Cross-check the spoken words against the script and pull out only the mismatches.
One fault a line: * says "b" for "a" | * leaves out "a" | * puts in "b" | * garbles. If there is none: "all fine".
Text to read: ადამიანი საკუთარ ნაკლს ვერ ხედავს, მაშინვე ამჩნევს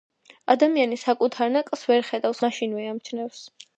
all fine